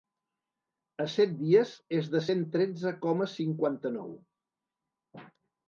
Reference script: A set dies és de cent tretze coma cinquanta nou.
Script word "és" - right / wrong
right